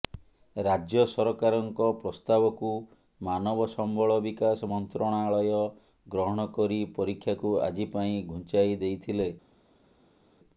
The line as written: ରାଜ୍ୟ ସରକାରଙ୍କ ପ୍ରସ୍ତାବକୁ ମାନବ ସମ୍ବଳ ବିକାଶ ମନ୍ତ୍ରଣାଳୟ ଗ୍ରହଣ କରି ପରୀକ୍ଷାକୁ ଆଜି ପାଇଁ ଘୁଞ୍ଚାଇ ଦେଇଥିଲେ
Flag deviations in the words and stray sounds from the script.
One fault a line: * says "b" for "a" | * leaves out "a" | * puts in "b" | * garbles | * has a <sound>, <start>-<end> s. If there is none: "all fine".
all fine